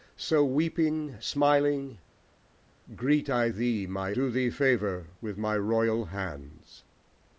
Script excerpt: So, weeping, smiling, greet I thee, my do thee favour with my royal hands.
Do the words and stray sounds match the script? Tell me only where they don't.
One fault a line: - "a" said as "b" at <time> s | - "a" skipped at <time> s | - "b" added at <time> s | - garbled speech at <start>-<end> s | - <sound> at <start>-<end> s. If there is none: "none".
none